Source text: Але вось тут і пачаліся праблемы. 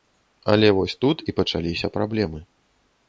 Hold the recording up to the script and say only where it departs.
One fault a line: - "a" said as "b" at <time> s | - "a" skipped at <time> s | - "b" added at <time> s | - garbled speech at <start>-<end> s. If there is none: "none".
none